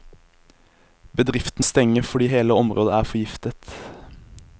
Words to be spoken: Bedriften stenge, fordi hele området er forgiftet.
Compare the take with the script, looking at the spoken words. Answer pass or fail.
pass